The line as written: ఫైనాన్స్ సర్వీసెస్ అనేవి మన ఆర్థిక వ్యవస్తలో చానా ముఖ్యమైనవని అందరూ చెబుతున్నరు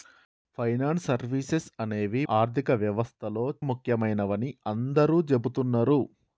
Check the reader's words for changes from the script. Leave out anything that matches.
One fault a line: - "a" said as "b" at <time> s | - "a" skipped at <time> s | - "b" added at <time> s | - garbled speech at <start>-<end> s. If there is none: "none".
- "మన" skipped at 2.2 s
- "చానా" skipped at 3.4 s